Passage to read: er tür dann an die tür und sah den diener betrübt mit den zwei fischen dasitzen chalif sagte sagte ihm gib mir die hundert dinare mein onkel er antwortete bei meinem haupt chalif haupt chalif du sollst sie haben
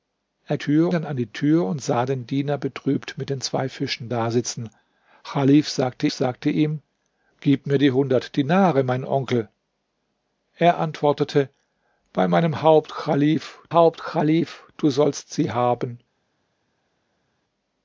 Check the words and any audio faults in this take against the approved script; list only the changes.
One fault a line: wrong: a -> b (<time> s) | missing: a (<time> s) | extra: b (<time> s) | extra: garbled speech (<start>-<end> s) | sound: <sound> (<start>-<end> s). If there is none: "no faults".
no faults